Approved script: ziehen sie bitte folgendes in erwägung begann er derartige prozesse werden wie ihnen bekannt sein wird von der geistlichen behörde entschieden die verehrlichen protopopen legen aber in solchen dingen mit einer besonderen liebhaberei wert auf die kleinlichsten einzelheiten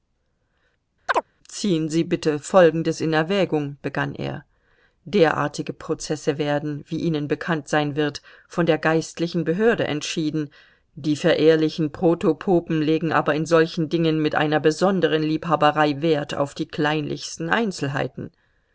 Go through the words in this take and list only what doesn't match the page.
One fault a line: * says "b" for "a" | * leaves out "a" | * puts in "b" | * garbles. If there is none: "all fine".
all fine